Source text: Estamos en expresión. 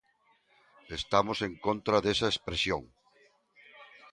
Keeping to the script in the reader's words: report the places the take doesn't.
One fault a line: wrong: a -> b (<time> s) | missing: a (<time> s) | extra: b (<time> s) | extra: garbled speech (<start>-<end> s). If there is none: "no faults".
extra: contra desa (1.6 s)